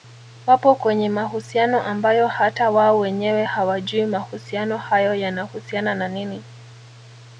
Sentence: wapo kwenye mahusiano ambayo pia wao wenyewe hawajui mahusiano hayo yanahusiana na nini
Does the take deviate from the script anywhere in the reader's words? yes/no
yes